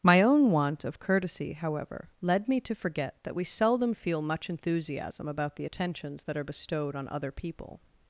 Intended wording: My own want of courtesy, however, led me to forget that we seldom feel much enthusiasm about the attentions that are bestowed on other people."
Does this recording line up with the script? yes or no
yes